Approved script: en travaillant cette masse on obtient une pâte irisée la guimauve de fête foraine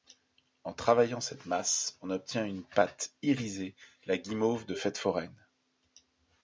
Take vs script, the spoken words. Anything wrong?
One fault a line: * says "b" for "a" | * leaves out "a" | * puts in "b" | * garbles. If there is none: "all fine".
all fine